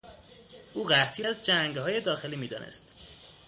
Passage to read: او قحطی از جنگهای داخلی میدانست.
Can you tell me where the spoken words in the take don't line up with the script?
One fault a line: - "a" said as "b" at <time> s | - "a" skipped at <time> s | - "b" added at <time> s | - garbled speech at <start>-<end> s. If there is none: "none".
none